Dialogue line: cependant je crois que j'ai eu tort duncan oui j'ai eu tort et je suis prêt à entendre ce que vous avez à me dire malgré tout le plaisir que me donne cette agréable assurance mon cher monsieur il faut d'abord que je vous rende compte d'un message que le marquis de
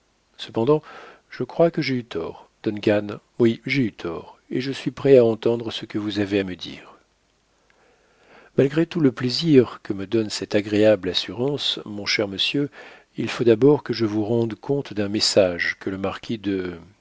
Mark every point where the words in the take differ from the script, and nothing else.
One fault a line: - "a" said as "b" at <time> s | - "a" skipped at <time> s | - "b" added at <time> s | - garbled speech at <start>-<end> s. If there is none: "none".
none